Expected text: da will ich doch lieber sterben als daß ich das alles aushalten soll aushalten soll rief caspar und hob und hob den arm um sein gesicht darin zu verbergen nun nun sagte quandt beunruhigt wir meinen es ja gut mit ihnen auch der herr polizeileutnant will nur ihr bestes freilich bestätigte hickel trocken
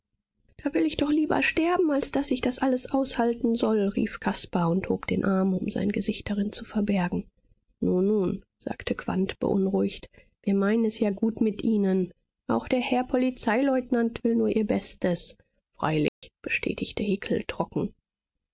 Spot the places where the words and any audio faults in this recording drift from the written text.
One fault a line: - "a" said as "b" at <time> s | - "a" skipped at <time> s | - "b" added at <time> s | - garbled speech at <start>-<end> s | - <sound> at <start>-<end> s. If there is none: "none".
- "aushalten soll" skipped at 3.9 s
- "und hob" skipped at 5.1 s
- dropout at 16.1-16.2 s